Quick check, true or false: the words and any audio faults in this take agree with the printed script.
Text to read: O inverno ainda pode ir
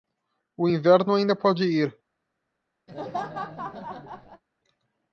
false